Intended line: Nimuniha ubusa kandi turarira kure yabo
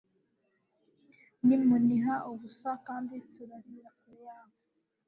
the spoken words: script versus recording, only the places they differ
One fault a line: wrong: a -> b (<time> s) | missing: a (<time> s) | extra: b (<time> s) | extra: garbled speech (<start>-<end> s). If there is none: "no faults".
no faults